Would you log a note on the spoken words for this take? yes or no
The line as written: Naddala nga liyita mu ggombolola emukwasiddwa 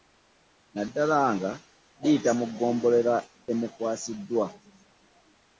no